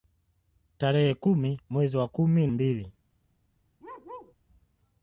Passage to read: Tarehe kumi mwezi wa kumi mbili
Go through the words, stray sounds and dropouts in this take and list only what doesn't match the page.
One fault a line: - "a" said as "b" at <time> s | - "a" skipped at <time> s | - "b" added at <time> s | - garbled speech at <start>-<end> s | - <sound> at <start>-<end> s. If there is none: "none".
- bark at 3.8-4.3 s